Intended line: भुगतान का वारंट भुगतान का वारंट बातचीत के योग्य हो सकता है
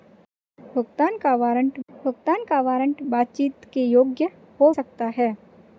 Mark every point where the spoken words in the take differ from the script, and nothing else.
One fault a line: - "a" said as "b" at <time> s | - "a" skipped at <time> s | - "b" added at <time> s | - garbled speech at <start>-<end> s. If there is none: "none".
none